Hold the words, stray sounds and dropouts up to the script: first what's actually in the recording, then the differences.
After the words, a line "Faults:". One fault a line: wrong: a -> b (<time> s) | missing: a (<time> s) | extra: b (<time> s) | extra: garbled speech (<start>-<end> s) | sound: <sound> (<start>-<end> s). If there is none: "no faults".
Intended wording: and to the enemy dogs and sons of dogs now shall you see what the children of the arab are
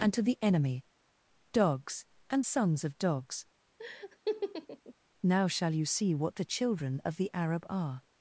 and to the enemy dogs and sons of dogs now shall you see what the children of the arab are
Faults:
sound: laugh (3.8-4.9 s)